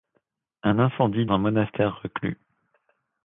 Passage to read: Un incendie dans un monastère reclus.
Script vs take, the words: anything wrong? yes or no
yes